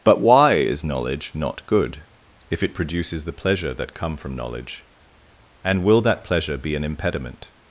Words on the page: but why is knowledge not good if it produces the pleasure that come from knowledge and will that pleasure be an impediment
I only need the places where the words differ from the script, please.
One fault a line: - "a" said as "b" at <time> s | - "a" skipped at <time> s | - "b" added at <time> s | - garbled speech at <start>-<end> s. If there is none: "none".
none